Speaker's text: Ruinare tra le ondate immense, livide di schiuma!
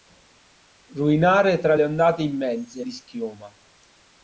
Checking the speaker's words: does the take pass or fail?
fail